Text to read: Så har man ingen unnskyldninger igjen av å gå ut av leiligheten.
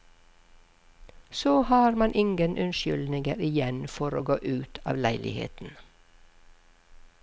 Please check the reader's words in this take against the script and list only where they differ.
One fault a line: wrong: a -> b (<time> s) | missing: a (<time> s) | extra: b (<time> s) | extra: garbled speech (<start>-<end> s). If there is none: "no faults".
wrong: av -> for (3.9 s)